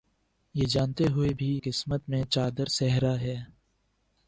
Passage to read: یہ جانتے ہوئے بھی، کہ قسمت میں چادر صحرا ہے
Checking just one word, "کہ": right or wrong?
wrong